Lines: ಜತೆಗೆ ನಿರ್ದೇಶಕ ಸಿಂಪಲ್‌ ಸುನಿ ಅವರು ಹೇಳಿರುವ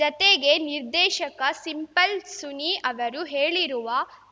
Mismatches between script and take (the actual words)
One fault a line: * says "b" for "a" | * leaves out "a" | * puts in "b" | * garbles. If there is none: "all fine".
all fine